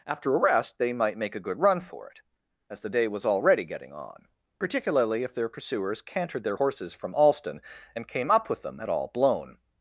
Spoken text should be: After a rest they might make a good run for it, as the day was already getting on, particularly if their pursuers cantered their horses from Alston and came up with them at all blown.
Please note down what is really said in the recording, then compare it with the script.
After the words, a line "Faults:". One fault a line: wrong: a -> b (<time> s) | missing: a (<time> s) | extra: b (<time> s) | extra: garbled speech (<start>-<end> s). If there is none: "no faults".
After a rest they might make a good run for it, as the day was already getting on, particularly if their pursuers cantered their horses from Alston and came up with them at all blown.
Faults:
no faults